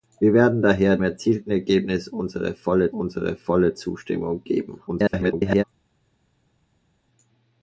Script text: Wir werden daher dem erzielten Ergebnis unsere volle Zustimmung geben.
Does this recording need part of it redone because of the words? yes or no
yes